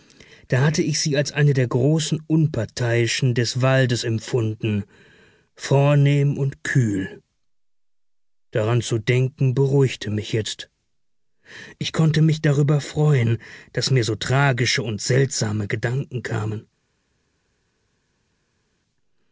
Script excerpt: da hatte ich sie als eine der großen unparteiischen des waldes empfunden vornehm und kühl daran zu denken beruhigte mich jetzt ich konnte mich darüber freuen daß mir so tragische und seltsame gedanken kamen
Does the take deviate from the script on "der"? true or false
false